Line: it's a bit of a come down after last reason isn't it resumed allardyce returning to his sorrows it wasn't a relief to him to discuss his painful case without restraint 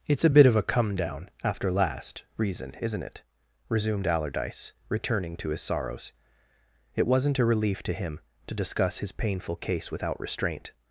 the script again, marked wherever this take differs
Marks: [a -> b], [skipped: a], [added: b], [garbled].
it's a bit of a come down after last reason isn't it resumed allardyce returning to his sorrows it wasn't a relief to him to discuss his painful case without restraint